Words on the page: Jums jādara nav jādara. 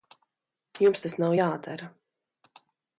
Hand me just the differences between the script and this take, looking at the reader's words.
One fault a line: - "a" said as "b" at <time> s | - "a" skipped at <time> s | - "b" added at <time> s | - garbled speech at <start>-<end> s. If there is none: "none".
- "jādara" said as "tas" at 1.0 s